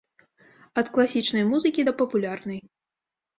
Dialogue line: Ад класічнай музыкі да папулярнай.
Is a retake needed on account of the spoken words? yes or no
no